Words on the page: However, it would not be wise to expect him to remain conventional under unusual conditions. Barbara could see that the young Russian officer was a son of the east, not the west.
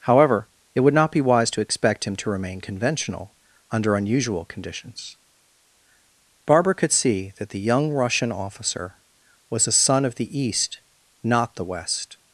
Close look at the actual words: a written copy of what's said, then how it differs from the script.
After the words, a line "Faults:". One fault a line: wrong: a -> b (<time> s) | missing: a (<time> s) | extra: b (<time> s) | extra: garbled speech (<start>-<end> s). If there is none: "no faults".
However, it would not be wise to expect him to remain conventional under unusual conditions. Barbara could see that the young Russian officer was a son of the east, not the west.
Faults:
no faults